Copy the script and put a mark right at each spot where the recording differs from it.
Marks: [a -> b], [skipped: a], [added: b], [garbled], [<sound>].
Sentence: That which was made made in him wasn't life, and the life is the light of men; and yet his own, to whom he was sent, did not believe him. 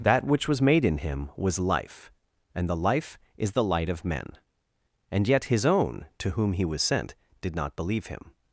That which was made [skipped: made] in him [wasn't -> was] life, and the life is the light of men; and yet his own, to whom he was sent, did not believe him.